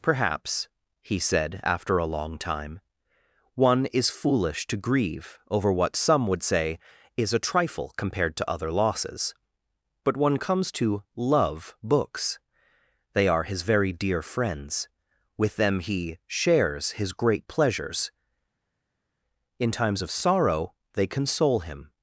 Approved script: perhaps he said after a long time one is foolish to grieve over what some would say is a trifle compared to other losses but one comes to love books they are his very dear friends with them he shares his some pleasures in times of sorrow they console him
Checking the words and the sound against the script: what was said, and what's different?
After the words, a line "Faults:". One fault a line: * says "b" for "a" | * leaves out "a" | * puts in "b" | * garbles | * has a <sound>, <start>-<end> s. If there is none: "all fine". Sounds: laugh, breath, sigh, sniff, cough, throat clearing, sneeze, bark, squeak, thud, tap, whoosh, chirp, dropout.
perhaps he said after a long time one is foolish to grieve over what some would say is a trifle compared to other losses but one comes to love books they are his very dear friends with them he shares his great pleasures in times of sorrow they console him
Faults:
* says "great" for "some"